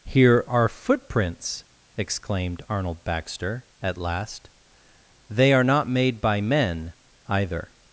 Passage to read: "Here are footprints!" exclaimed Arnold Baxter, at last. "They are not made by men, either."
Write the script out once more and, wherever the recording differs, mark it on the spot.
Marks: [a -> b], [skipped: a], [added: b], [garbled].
"Here are footprints!" exclaimed Arnold Baxter, at last. "They are not made by men, either."